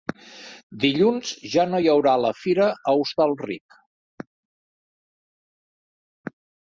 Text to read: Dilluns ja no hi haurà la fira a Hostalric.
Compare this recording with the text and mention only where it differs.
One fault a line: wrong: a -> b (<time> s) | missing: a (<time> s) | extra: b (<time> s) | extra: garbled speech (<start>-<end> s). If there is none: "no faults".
no faults